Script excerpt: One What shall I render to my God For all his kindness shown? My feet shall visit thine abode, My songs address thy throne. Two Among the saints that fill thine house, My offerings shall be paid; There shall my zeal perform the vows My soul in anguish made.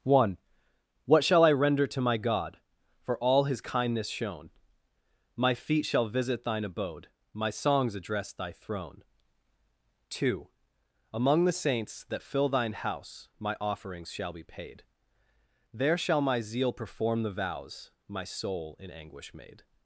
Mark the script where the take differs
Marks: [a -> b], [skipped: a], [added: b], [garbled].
One What shall I render to my God For all his kindness shown? My feet shall visit thine abode, My songs address thy throne. Two Among the saints that fill thine house, My offerings shall be paid; There shall my zeal perform the vows My soul in anguish made.